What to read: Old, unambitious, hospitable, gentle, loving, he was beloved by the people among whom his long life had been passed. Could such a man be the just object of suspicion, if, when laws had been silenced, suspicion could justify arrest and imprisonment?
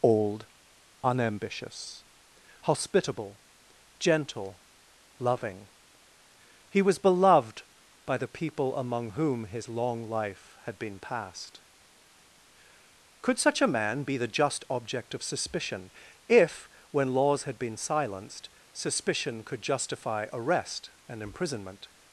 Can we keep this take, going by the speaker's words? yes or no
yes